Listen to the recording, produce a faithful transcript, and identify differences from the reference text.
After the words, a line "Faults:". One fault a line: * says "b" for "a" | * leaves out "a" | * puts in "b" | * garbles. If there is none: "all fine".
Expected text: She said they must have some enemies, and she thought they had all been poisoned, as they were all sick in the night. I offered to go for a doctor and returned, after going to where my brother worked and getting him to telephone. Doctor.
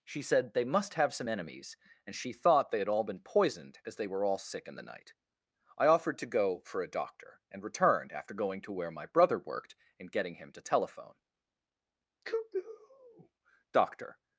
She said they must have some enemies, and she thought they had all been poisoned, as they were all sick in the night. I offered to go for a doctor and returned, after going to where my brother worked and getting him to telephone. cuckoo Doctor.
Faults:
* puts in "cuckoo"